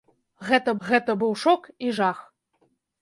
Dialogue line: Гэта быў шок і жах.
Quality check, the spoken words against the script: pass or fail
fail